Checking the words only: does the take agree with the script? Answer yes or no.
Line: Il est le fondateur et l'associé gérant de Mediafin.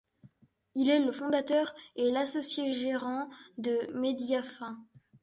yes